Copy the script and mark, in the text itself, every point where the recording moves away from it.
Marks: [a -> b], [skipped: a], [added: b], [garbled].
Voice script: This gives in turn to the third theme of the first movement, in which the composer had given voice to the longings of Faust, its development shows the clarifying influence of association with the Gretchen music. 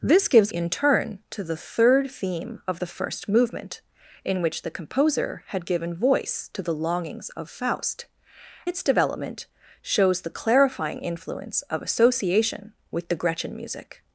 This gives in turn to the third theme of the first movement, in which the composer had given voice to the longings of Faust, its development shows the clarifying influence of association with the Gretchen music.